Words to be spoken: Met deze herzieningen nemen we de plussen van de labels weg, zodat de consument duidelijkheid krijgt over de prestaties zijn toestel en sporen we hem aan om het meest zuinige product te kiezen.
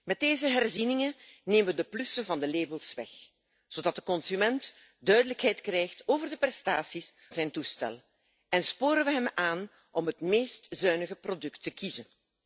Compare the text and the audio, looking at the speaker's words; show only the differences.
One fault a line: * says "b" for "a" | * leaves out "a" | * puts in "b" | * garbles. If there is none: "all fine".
all fine